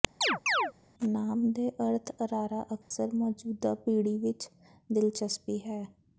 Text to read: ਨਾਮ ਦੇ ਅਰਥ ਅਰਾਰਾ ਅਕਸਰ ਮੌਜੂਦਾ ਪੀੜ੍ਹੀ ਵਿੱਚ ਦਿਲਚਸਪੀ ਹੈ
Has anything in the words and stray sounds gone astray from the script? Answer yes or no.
yes